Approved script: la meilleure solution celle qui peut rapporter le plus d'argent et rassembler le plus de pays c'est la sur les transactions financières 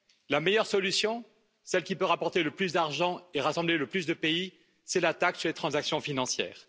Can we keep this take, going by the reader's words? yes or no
no